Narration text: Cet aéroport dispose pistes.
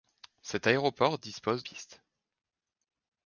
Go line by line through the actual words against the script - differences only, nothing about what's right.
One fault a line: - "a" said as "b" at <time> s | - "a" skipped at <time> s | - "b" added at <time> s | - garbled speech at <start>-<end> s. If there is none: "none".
none